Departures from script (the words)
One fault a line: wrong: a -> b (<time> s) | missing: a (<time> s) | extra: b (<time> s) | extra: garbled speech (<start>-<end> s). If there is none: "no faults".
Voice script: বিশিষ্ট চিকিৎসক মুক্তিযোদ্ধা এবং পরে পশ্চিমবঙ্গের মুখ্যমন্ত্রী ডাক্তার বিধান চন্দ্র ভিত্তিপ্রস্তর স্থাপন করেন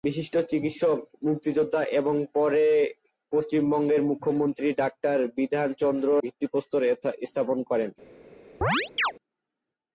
no faults